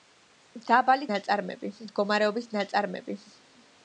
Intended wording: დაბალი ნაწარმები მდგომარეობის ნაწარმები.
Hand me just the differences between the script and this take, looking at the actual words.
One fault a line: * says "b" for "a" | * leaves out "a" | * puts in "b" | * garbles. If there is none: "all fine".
all fine